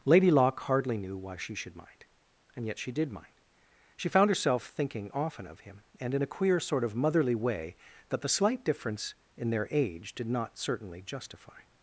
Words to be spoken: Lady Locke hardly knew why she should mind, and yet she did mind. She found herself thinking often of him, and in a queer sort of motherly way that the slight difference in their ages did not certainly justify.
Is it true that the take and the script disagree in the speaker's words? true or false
true